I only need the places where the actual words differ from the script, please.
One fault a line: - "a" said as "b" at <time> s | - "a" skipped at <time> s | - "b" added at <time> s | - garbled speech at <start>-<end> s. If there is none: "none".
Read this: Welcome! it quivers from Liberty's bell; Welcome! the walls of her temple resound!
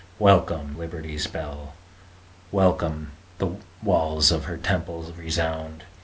- "it quivers from" skipped at 0.8 s